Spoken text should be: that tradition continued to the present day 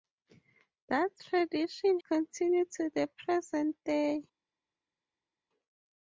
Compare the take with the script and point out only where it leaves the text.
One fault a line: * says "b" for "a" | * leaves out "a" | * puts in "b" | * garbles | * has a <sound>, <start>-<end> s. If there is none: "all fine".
all fine